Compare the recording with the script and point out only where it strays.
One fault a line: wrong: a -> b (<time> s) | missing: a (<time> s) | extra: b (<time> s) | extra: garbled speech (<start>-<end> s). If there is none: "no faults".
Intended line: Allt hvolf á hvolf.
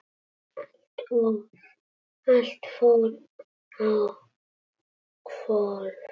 wrong: hvolf -> fór (2.8 s)